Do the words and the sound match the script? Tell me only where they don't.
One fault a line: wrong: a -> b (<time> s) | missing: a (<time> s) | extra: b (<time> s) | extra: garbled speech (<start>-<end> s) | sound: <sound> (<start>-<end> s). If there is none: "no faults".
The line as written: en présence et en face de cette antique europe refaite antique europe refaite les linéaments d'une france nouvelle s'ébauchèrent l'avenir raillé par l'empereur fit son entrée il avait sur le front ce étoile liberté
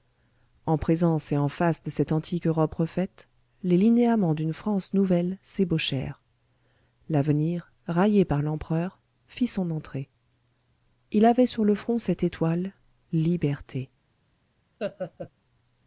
missing: antique europe refaite (3.3 s)
wrong: ce -> cette (12.0 s)
sound: laugh (14.8-15.3 s)